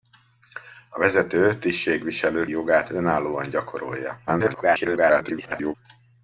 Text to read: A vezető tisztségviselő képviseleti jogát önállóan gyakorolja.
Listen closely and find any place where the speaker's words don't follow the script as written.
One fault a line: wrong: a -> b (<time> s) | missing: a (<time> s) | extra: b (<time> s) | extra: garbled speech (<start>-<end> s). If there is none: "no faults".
missing: képviseleti (2.5 s)
extra: garbled speech (4.3-5.8 s)